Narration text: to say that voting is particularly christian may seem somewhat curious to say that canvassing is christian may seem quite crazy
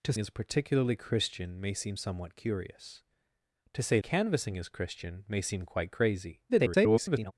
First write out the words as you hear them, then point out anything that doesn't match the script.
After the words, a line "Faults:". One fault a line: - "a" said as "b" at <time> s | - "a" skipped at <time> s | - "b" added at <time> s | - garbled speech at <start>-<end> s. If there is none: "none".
to is particularly christian may seem somewhat curious to say canvassing is christian may seem quite crazy [garbled]
Faults:
- "say that voting" skipped at 0.1 s
- "that" skipped at 4.0 s
- garbled speech at 6.5-7.3 s